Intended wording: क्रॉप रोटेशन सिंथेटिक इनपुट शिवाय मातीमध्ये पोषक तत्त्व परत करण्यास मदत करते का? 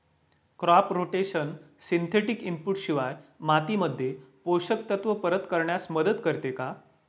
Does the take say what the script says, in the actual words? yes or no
yes